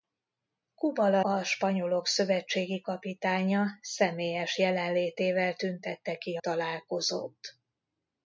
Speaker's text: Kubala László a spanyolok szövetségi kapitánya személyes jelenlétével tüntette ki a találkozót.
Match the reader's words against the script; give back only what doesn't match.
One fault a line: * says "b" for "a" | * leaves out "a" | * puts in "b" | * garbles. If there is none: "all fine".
* leaves out "László"
* leaves out "a"